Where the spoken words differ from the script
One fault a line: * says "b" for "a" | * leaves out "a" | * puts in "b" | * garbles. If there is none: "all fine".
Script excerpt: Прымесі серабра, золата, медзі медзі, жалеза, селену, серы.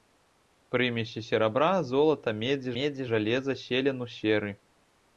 all fine